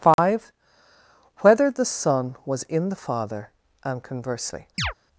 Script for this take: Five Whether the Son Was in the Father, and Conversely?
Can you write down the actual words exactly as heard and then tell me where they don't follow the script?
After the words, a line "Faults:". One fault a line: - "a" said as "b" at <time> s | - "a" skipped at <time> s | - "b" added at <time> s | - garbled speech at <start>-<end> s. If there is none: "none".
Five Whether the Son Was in the Father, and Conversely?
Faults:
none